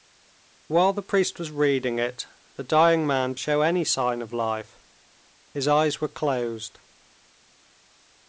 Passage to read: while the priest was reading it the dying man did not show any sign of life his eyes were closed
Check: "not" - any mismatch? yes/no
yes